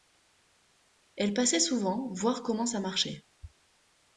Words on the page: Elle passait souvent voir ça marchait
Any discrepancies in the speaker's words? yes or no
yes